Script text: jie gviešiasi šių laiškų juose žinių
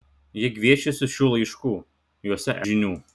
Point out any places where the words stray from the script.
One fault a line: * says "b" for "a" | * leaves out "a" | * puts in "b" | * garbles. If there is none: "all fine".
all fine